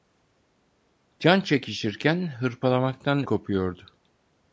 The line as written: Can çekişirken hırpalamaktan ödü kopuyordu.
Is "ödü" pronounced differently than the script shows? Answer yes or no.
yes